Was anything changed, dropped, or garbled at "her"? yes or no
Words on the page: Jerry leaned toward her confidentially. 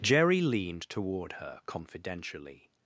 no